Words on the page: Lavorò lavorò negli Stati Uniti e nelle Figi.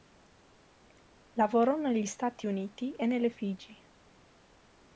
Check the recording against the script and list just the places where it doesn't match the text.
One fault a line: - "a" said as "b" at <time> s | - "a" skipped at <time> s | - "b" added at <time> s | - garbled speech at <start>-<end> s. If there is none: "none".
- "lavorò" skipped at 1.8 s